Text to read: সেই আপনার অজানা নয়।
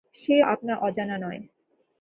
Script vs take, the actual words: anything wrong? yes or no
no